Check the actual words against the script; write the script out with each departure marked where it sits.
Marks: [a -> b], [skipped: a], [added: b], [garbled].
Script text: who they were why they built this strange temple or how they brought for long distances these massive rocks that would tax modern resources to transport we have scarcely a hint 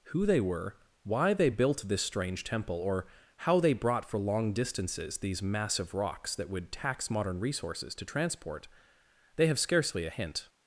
who they were why they built this strange temple or how they brought for long distances these massive rocks that would tax modern resources to transport [we -> they] have scarcely a hint